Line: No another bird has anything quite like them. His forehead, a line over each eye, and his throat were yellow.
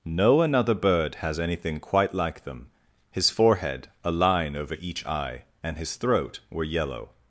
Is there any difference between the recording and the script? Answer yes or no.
no